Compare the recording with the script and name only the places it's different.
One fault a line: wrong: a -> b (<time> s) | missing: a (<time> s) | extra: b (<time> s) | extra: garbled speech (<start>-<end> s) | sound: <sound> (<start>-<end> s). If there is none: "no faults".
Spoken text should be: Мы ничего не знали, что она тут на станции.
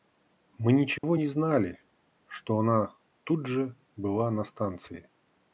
sound: dropout (1.0-1.0 s)
extra: же была (3.5 s)